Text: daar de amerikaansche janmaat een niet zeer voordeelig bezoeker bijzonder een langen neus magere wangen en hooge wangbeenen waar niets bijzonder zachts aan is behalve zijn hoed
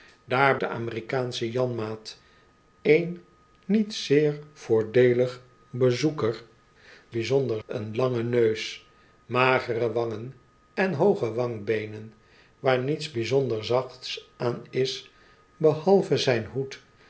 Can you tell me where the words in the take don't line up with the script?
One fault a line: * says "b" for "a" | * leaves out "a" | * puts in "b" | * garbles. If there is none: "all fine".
all fine